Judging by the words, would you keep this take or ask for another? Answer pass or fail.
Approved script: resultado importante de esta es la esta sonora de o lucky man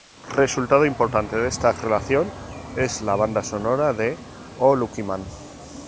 fail